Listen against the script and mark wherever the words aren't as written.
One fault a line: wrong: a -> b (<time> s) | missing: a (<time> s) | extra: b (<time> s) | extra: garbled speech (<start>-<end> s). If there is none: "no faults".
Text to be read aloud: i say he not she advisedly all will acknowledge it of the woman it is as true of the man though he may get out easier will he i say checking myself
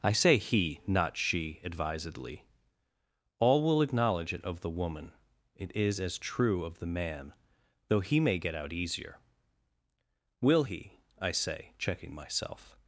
no faults